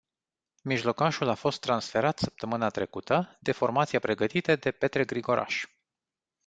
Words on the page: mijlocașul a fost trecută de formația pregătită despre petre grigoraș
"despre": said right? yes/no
no